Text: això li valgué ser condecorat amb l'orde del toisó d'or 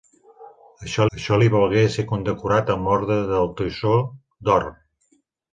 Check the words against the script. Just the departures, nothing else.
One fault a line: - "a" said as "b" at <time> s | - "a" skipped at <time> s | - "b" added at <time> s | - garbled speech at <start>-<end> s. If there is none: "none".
- "això" added at 1.2 s